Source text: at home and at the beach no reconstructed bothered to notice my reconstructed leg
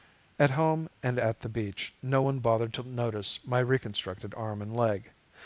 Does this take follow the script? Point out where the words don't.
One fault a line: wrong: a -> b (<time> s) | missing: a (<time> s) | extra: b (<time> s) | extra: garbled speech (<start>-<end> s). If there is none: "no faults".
wrong: reconstructed -> one (2.2 s)
extra: arm and (4.3 s)